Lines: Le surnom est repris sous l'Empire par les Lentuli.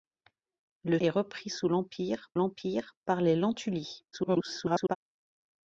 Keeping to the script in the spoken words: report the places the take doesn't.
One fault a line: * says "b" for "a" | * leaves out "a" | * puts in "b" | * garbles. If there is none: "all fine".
* leaves out "surnom"
* puts in "l'Empire"
* garbles